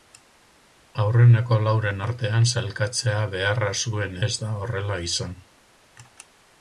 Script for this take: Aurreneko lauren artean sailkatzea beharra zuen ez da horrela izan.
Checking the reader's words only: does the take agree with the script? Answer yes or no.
yes